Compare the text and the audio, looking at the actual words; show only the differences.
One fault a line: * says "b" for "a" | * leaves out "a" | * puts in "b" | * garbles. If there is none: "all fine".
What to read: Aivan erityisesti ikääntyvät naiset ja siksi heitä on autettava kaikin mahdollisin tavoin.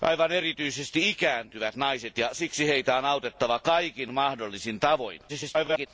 * garbles